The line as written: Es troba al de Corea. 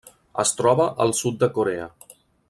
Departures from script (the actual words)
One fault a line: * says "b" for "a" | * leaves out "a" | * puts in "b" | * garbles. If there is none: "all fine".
* puts in "sud"